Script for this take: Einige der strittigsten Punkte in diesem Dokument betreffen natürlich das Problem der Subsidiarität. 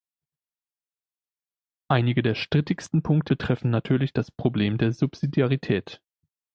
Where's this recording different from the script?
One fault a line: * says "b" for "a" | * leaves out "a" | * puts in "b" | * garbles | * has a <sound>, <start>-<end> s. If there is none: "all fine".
* leaves out "in diesem Dokument"